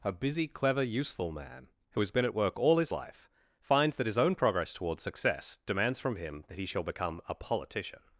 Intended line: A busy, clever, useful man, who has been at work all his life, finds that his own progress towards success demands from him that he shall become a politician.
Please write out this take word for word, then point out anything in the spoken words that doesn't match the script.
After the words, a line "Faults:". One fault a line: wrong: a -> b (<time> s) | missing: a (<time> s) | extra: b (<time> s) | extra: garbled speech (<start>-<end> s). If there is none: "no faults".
A busy, clever, useful man, who has been at work all his life, finds that his own progress towards success demands from him that he shall become a politician.
Faults:
no faults